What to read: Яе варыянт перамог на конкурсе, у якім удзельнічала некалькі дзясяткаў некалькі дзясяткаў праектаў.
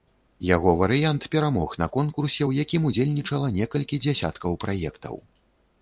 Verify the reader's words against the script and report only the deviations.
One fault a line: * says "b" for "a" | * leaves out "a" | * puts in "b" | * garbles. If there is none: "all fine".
* says "Яго" for "Яе"
* leaves out "некалькі дзясяткаў"